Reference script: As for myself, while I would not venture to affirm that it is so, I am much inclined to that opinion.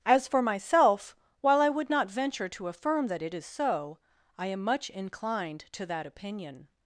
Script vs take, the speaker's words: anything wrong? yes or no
no